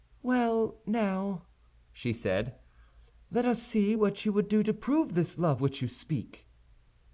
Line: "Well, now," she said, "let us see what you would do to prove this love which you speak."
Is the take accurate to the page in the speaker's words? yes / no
yes